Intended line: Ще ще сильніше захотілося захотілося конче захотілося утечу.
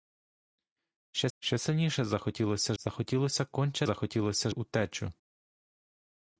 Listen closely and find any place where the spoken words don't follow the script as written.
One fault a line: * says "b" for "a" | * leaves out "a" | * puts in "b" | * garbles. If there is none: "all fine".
all fine